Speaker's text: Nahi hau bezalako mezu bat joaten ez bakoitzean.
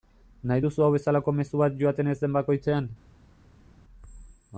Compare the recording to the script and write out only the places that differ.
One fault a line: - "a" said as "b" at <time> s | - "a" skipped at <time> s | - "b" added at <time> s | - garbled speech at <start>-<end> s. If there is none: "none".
- "duzu" added at 0.6 s
- "den" added at 2.2 s